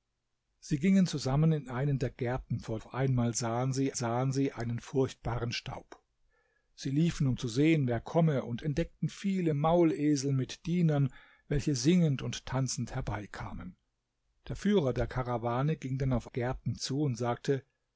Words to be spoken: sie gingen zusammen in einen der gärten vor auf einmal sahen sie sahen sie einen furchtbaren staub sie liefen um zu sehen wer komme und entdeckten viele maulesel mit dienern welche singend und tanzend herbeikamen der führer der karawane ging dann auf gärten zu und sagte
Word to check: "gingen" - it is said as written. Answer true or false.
true